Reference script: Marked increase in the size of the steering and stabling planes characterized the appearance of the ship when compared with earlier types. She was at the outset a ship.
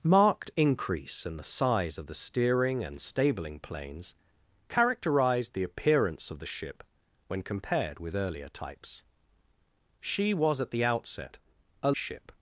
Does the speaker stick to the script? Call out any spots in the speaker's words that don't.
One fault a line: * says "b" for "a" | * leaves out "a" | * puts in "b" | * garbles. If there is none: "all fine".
all fine